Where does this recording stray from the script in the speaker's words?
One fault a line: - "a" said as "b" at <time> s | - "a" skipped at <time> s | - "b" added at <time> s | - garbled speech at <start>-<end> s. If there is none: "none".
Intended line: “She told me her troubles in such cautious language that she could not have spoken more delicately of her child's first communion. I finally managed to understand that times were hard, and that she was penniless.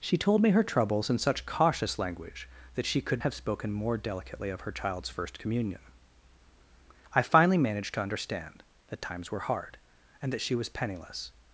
- "not" skipped at 3.2 s